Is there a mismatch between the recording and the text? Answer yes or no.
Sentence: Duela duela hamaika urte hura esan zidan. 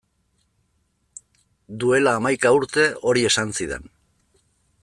yes